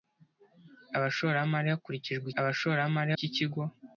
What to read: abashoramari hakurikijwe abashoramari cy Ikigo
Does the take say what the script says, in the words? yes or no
yes